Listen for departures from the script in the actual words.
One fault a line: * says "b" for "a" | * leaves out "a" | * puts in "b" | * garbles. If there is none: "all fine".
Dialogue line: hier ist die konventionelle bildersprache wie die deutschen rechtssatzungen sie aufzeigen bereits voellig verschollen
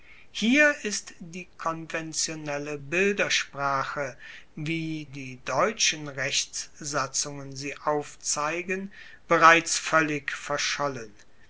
all fine